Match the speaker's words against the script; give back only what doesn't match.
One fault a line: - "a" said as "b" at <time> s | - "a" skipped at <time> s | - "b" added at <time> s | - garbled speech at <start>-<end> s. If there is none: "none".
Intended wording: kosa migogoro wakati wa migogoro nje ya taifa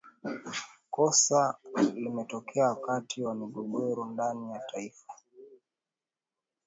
- "migogoro" said as "limetokea" at 1.9 s
- "nje" said as "ndani" at 4.1 s